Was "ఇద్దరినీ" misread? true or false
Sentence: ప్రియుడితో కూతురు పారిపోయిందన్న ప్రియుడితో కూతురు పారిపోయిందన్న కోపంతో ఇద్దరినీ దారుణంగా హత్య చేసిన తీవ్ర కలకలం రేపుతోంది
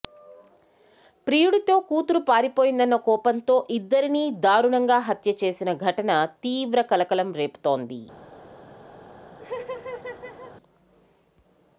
false